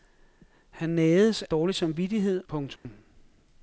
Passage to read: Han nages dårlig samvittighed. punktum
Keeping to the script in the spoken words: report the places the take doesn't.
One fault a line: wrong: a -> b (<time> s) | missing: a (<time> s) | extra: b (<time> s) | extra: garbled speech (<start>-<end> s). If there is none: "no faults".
no faults